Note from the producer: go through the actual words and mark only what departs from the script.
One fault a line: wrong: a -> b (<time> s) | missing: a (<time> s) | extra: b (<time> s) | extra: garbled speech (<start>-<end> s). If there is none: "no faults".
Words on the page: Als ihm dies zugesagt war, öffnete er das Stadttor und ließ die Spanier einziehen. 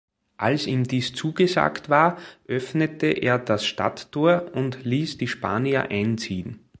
no faults